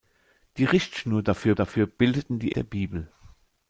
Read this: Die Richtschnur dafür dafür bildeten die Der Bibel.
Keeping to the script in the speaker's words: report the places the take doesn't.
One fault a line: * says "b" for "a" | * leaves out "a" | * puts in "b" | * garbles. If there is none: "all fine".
all fine